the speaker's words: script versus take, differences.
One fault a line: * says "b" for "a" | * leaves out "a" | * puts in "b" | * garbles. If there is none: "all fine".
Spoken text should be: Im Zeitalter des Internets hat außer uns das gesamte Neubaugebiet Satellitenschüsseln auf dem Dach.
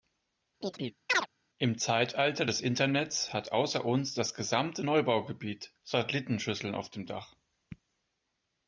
all fine